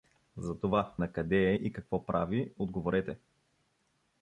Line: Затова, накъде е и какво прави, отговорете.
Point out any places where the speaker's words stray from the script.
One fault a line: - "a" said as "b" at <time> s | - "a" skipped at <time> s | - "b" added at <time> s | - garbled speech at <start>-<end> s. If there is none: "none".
none